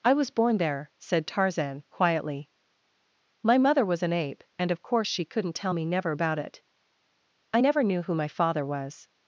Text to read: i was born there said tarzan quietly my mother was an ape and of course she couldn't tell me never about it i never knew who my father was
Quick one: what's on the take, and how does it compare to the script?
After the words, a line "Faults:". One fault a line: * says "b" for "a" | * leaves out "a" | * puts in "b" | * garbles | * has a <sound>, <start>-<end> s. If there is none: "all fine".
i was born there said tarzan quietly my mother was an ape and of course she couldn't tell me never about it i never knew who my father was
Faults:
all fine